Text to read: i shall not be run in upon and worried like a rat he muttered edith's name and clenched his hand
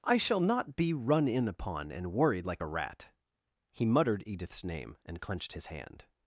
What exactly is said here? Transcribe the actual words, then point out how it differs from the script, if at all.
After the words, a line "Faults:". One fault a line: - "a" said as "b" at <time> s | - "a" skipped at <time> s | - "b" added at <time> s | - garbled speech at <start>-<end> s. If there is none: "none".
i shall not be run in upon and worried like a rat he muttered edith's name and clenched his hand
Faults:
none